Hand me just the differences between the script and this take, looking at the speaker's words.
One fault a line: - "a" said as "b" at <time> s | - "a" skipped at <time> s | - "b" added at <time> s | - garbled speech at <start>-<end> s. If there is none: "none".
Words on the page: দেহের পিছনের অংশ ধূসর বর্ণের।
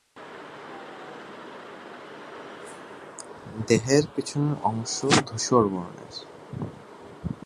none